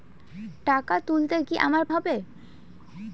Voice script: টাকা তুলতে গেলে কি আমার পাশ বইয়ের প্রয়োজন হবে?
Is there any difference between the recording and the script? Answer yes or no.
yes